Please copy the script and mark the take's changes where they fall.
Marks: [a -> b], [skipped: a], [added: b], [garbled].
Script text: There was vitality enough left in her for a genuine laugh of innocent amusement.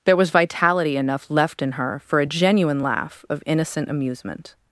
There was vitality enough left in her for a genuine laugh of innocent amusement.